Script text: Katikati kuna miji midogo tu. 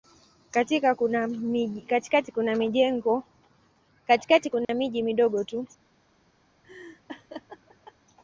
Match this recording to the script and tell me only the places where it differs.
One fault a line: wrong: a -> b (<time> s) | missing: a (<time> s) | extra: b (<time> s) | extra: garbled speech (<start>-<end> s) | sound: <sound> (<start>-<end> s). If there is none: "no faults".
sound: dropout (4.6-4.7 s)
sound: laugh (6.6-7.9 s)